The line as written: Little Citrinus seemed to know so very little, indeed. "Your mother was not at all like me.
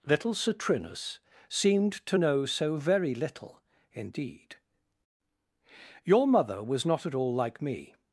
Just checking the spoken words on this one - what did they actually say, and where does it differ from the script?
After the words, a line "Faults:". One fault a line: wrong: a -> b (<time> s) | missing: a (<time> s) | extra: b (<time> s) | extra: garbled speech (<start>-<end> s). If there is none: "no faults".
Little Citrinus seemed to know so very little, indeed. "Your mother was not at all like me.
Faults:
no faults